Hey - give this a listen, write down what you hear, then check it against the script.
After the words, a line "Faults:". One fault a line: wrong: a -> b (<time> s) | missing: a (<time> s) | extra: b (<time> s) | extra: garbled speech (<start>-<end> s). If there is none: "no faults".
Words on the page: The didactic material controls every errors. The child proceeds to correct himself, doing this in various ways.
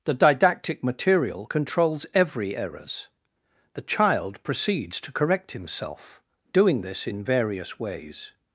The didactic material controls every errors. The child proceeds to correct himself, doing this in various ways.
Faults:
no faults